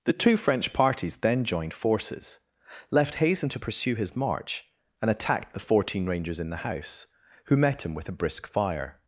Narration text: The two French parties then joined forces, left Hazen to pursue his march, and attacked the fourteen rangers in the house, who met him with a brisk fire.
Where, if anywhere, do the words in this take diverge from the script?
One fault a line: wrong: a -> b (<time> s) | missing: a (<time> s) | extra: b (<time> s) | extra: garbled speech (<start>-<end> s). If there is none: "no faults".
no faults